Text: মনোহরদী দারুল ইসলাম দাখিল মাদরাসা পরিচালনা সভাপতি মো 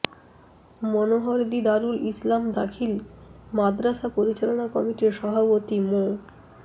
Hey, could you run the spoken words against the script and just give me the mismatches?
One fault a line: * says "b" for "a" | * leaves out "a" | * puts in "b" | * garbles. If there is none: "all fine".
* puts in "কমিটির"